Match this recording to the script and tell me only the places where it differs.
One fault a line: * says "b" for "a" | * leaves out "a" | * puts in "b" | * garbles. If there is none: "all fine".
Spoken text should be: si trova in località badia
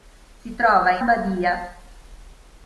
* leaves out "località"